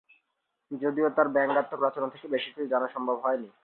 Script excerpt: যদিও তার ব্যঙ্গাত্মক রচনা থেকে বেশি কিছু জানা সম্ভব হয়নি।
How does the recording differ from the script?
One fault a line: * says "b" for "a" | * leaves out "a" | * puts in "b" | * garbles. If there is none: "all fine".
all fine